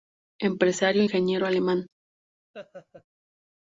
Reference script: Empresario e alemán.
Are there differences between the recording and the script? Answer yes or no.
yes